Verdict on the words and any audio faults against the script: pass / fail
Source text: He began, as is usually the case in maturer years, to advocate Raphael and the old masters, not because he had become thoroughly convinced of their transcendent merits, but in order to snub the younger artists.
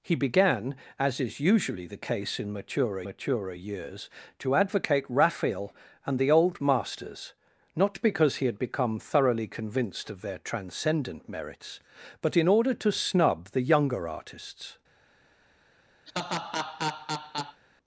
fail